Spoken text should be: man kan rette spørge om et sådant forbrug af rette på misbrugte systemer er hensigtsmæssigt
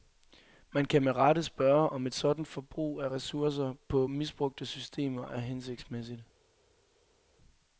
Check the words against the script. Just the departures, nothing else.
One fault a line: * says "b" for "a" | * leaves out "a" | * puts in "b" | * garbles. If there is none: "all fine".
* puts in "med"
* says "ressourcer" for "rette"